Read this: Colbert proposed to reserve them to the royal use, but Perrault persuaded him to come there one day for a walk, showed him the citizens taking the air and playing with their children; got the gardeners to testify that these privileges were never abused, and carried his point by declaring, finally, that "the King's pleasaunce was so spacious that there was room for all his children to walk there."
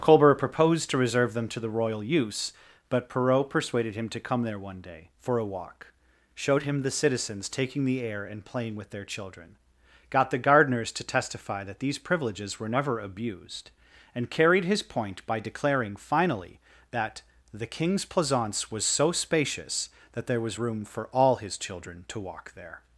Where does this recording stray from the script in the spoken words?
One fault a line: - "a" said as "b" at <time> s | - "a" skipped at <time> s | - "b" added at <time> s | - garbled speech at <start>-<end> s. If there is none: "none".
none